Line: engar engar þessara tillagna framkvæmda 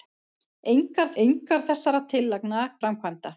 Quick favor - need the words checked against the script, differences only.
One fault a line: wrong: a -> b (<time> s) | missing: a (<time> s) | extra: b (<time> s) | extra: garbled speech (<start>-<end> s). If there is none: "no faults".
no faults